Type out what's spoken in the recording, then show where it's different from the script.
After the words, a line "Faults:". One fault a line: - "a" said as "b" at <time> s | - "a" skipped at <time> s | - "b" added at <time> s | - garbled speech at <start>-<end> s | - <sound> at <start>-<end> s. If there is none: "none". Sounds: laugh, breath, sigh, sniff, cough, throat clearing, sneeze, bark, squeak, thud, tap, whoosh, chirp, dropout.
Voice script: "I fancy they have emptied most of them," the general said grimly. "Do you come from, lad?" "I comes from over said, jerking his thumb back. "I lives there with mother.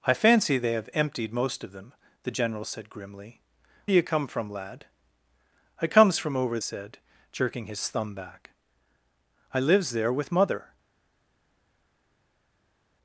"I fancy they have emptied most of them," the general said grimly. "Do you come from, lad?" "I comes from over said, jerking his thumb back. "I lives there with mother.
Faults:
none